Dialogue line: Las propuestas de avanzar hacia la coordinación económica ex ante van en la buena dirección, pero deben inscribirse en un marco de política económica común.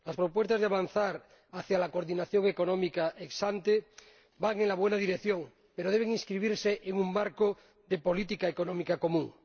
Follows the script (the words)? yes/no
yes